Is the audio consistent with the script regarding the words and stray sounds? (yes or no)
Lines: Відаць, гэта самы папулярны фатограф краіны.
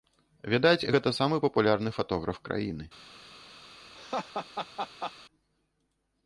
no